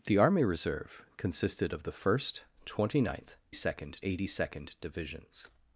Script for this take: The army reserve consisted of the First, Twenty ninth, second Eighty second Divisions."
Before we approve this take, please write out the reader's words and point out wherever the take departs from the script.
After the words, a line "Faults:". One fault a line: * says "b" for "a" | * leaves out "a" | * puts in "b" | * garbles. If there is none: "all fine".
The army reserve consisted of the First, Twenty ninth, second Eighty second Divisions."
Faults:
all fine